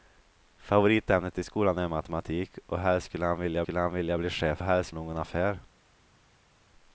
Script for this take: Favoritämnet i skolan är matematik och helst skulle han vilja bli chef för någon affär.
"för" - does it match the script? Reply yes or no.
no